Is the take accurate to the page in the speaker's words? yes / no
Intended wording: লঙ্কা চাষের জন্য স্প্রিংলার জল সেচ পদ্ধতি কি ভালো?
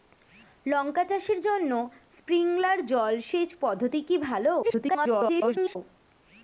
no